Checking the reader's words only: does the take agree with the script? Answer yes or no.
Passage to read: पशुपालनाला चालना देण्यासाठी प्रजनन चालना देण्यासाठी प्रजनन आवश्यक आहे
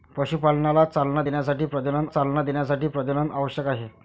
yes